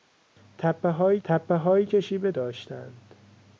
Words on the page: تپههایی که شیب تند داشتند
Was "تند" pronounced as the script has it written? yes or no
no